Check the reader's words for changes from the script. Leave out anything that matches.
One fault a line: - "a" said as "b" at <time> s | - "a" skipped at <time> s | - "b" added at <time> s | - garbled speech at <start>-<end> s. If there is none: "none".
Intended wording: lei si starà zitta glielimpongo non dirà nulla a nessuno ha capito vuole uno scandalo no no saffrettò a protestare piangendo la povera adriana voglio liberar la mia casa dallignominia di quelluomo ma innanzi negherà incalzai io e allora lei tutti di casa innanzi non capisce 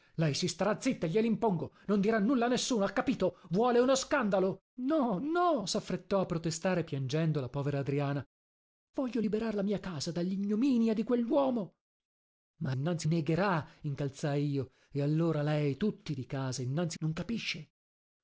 none